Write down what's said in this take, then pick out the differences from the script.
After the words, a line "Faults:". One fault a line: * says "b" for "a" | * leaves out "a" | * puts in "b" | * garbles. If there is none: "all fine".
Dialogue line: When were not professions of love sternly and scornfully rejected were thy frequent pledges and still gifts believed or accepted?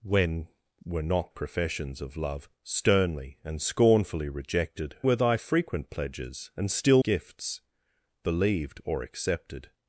When were not professions of love sternly and scornfully rejected were thy frequent pledges and still gifts believed or accepted?
Faults:
all fine